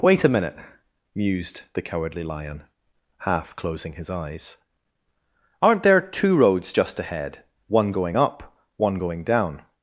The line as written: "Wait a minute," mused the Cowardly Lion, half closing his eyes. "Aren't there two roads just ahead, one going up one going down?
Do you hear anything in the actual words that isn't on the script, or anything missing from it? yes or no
no